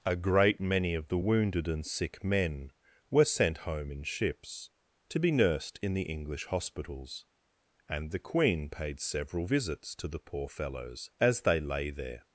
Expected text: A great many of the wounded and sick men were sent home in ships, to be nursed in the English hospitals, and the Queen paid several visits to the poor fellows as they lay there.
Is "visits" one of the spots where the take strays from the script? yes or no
no